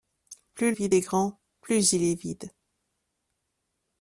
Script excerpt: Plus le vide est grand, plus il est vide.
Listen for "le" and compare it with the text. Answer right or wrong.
wrong